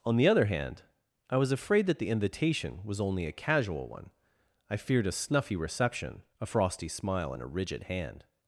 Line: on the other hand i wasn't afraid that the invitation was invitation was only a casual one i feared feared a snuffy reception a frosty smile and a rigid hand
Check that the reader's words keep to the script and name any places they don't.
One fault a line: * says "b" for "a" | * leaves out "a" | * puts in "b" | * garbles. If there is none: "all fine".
* says "was" for "wasn't"
* leaves out "invitation was"
* leaves out "feared"